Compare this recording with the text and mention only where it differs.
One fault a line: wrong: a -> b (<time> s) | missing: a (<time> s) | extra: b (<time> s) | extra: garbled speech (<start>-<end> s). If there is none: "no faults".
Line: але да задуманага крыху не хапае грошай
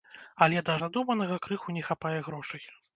no faults